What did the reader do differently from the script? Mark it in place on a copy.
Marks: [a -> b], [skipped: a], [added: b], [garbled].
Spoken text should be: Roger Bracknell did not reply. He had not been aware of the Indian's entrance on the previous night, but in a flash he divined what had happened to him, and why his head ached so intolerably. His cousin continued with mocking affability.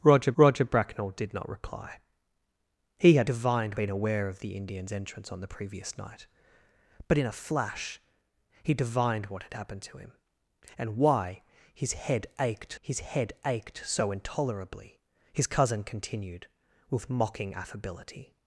Roger [added: roger] Bracknell did not reply. He had [not -> divined] been aware of the Indian's entrance on the previous night, but in a flash he divined what had happened to him, and why his head ached [added: his head ached] so intolerably. His cousin continued with mocking affability.